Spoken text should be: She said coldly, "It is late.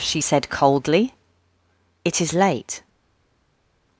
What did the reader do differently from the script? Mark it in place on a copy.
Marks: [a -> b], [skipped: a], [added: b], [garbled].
She said coldly, "It is late.